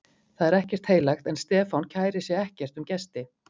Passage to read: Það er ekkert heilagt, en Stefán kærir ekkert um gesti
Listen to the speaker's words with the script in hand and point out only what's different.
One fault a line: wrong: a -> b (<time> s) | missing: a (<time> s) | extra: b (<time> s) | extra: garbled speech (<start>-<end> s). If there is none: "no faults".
extra: sig (2.3 s)